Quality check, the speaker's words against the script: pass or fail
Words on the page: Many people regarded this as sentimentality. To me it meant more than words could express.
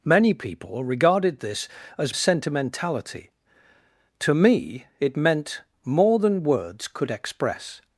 pass